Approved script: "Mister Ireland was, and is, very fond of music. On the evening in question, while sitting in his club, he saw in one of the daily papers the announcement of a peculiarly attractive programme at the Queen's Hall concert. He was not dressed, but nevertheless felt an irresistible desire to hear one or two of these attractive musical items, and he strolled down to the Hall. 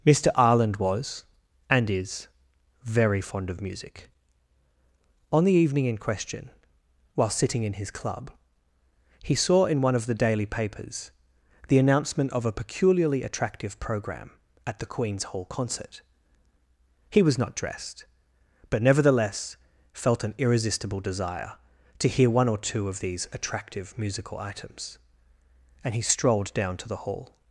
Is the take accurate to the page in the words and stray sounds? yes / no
yes